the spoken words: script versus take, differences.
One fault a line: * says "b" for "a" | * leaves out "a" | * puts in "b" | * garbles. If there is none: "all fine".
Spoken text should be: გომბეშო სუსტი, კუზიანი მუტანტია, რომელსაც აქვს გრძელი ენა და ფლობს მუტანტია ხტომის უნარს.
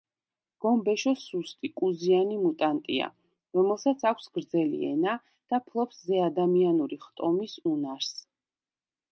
* says "ზეადამიანური" for "მუტანტია"